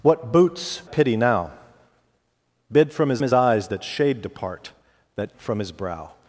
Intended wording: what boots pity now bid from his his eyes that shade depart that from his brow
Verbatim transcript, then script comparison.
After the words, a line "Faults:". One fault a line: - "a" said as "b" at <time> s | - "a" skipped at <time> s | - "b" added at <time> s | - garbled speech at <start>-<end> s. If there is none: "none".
what boots pity now bid from his his eyes that shade depart that from his brow
Faults:
none